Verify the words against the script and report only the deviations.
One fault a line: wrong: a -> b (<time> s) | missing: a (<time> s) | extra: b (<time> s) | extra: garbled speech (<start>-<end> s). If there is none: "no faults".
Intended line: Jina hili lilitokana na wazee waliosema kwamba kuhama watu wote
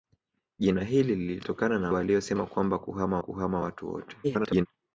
missing: wazee (1.9 s)
extra: kuhama (3.2 s)
extra: garbled speech (4.2-4.7 s)